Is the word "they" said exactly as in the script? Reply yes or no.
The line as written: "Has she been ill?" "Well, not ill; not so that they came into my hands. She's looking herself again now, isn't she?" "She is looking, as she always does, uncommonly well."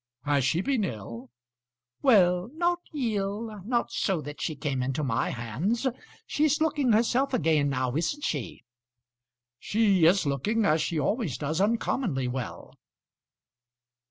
no